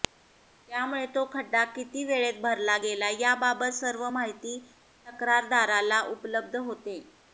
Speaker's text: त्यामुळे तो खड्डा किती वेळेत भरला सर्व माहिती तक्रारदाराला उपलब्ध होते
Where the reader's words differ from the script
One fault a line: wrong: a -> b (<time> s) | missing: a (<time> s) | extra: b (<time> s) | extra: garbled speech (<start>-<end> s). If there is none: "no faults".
extra: गेला याबाबत (2.8 s)